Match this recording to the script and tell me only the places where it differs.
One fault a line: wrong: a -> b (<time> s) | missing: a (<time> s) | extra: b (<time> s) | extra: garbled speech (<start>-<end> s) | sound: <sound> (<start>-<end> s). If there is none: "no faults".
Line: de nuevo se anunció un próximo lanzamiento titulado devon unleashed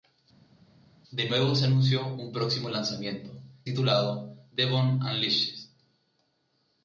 no faults